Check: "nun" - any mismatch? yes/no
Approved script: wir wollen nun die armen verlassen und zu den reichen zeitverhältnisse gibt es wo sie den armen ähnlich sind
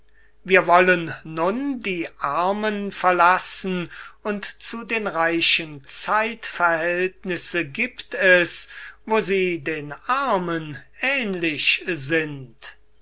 no